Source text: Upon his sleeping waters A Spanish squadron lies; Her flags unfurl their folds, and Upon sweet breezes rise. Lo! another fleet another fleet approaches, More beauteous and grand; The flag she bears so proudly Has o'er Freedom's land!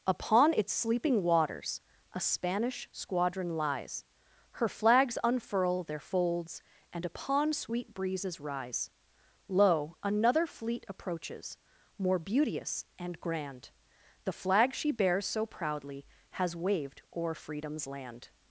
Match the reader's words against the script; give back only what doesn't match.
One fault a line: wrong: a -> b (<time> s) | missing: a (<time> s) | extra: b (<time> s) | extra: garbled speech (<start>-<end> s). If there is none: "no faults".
wrong: his -> its (0.6 s)
missing: another fleet (10.8 s)
extra: waved (16.6 s)